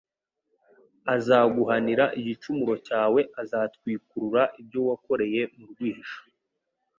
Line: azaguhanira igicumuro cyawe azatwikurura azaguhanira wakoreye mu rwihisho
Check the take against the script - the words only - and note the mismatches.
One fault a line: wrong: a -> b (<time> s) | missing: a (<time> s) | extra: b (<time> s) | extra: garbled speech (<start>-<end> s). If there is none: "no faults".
wrong: azaguhanira -> ibyo (4.6 s)